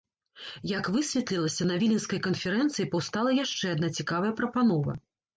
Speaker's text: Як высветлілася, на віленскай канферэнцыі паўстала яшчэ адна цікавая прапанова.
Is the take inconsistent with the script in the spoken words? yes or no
no